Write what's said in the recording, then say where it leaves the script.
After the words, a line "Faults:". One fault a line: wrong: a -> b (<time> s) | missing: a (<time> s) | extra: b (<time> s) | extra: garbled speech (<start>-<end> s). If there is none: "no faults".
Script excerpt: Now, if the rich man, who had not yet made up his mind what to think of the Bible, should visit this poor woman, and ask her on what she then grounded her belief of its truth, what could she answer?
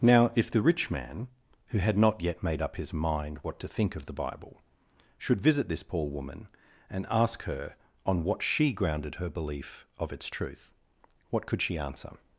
Now, if the rich man, who had not yet made up his mind what to think of the Bible, should visit this poor woman, and ask her on what she grounded her belief of its truth, what could she answer?
Faults:
missing: then (8.7 s)